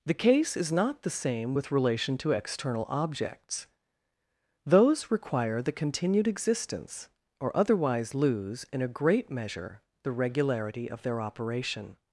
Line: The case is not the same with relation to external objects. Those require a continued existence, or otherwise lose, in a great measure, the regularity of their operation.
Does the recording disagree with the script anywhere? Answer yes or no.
yes